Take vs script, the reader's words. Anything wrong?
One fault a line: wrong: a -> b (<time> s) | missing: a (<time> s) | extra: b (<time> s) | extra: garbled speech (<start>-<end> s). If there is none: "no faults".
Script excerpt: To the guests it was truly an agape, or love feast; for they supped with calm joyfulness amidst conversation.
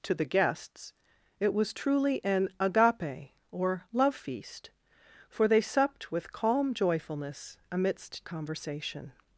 no faults